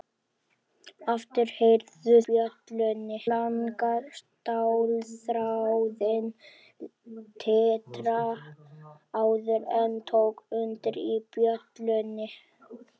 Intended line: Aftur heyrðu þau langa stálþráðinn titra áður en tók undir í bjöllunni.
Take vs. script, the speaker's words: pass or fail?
fail